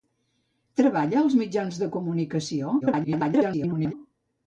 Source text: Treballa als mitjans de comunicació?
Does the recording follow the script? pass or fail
fail